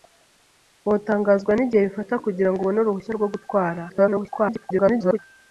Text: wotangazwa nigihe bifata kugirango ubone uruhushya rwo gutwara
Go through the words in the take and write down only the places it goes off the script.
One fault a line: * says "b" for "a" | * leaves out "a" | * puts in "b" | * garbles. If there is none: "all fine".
* garbles